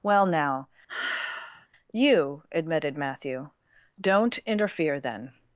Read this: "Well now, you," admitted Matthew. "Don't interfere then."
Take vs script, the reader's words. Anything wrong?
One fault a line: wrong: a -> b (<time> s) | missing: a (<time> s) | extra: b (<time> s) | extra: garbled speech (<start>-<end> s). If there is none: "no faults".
no faults